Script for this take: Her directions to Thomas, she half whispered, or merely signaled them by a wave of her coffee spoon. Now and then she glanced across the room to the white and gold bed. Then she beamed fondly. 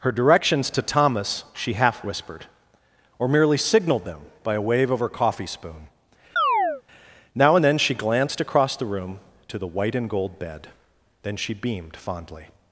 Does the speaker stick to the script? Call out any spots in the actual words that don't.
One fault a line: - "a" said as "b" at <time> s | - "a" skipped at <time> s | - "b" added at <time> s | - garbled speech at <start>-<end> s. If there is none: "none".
none